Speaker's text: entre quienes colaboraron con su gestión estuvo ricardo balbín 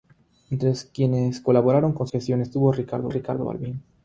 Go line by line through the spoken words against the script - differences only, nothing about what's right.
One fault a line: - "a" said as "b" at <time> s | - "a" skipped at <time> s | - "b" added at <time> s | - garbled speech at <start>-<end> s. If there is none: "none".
- "su" skipped at 2.1 s
- "ricardo" added at 3.1 s